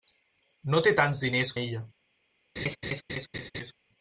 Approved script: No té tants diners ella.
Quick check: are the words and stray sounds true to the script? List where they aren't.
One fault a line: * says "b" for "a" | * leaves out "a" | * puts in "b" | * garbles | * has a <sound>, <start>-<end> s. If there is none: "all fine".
* has a laugh, 2.6-3.7 s